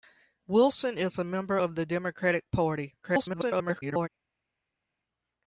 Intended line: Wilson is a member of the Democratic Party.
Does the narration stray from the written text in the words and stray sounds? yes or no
yes